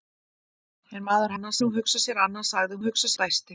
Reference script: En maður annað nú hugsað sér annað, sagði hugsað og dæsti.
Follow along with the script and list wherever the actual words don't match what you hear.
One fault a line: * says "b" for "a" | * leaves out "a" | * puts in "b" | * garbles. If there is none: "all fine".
all fine